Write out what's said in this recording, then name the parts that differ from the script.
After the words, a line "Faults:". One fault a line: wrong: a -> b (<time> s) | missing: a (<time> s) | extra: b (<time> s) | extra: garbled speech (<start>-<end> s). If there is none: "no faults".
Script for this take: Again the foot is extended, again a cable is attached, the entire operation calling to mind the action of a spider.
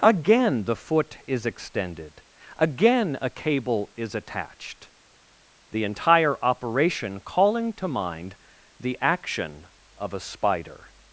Again the foot is extended, again a cable is attached, the entire operation calling to mind the action of a spider.
Faults:
no faults